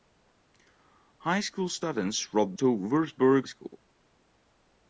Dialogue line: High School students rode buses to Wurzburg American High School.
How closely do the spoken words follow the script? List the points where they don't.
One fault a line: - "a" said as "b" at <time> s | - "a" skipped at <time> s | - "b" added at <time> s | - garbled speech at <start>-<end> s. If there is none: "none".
- "buses" skipped at 2.5 s
- "American High" skipped at 3.5 s